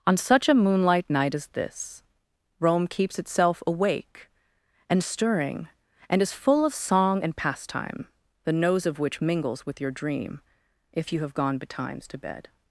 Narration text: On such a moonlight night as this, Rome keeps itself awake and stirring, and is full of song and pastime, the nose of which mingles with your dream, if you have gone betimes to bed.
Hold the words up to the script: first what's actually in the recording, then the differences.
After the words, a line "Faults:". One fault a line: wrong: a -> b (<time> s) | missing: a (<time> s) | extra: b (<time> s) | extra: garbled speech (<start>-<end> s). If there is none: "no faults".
On such a moonlight night as this, Rome keeps itself awake and stirring, and is full of song and pastime, the nose of which mingles with your dream, if you have gone betimes to bed.
Faults:
no faults